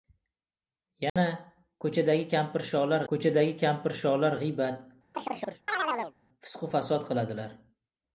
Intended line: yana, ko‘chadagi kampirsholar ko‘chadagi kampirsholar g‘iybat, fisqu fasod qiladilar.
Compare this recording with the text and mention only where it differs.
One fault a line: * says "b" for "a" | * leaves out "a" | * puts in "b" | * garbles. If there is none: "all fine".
all fine